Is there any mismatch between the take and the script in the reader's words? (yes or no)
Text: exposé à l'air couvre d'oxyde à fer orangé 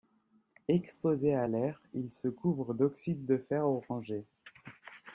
yes